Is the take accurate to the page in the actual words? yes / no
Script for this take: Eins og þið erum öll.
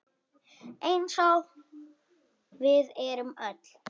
no